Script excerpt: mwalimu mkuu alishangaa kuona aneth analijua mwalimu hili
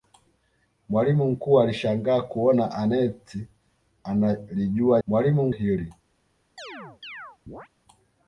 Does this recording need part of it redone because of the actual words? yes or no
no